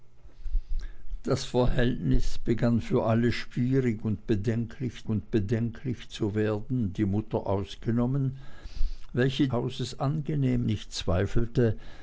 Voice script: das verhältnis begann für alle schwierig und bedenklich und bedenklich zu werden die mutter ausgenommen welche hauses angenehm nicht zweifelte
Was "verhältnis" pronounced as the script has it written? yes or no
yes